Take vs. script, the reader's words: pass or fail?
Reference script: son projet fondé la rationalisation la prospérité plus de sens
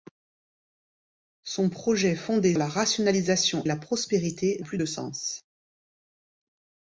pass